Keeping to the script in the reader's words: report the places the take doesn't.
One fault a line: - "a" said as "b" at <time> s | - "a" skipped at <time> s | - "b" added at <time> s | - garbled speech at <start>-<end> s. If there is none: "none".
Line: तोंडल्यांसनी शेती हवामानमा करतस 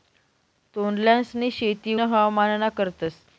none